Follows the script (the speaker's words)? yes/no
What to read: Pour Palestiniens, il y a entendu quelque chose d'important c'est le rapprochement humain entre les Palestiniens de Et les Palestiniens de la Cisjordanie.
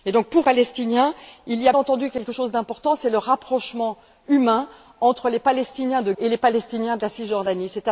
yes